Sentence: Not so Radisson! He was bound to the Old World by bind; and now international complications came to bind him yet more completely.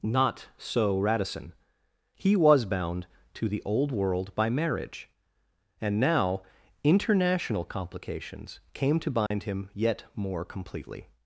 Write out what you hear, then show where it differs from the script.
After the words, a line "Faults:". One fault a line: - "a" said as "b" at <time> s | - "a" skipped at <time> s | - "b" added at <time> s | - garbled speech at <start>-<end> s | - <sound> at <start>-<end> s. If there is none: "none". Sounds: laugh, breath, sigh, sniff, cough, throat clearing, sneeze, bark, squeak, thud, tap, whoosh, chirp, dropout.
Not so Radisson! He was bound to the Old World by marriage; and now international complications came to bind him yet more completely.
Faults:
- "bind" said as "marriage" at 4.5 s
- dropout at 9.3-9.3 s